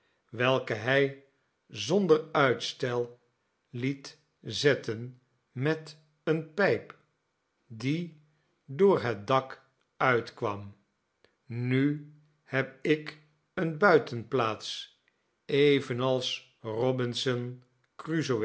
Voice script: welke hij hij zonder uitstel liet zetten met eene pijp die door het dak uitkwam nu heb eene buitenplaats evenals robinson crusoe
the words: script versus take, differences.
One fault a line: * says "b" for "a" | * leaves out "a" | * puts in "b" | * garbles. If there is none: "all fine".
* leaves out "hij"
* puts in "ik"